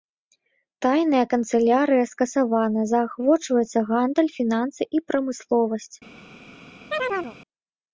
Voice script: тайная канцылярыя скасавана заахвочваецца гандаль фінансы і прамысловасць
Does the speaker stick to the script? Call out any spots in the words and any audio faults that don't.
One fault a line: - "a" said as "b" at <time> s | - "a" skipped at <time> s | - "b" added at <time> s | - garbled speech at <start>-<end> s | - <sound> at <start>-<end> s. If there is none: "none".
- chirp at 6.9-7.4 s